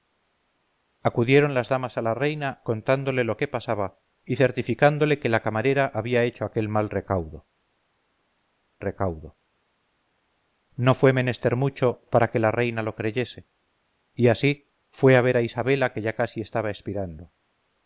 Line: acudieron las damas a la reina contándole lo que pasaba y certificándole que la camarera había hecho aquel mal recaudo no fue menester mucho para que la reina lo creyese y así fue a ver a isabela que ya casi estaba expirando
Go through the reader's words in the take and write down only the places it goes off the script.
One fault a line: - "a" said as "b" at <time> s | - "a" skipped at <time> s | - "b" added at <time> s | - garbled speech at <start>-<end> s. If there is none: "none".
- "recaudo" added at 8.8 s